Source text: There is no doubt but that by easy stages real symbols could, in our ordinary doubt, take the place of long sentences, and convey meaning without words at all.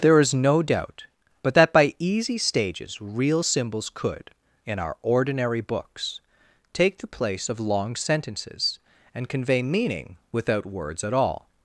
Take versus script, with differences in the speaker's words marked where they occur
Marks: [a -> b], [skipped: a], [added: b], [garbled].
There is no doubt but that by easy stages real symbols could, in our ordinary [doubt, -> books] take the place of long sentences, and convey meaning without words at all.